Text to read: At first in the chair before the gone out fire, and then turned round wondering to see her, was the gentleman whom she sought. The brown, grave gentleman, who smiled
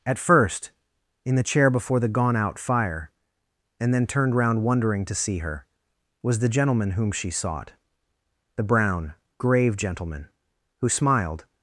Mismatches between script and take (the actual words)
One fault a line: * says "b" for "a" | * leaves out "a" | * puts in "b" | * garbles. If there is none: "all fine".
all fine